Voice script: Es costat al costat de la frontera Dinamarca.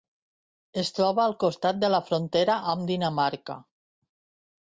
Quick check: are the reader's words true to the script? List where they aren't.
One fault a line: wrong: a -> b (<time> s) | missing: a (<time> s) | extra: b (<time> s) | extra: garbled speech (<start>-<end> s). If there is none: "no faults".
wrong: costat -> troba (1.0 s)
extra: amb (2.7 s)